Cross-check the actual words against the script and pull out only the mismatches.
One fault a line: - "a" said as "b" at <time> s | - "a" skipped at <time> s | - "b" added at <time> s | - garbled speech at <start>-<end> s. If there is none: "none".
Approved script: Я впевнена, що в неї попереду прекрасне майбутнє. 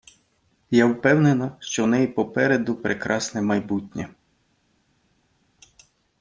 none